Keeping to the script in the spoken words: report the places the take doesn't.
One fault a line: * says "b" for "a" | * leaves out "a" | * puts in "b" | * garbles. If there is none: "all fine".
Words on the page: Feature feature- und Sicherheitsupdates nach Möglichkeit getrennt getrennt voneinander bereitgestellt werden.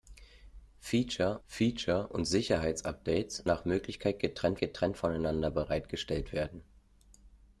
all fine